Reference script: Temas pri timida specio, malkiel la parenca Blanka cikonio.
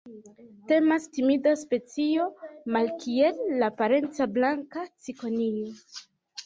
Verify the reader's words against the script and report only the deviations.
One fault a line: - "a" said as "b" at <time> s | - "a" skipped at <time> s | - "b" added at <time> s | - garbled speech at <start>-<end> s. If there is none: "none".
- "pri" skipped at 1.0 s